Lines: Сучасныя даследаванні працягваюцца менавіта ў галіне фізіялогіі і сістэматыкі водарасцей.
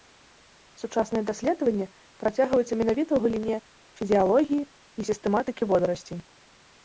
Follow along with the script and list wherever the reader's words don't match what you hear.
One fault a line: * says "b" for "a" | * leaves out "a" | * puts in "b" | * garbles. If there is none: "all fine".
all fine